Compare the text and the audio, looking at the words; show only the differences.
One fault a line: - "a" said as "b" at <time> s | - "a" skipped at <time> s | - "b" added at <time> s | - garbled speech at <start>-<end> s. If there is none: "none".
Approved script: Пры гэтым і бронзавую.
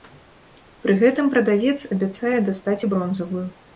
- "прадавец абяцае дастаць" added at 1.4 s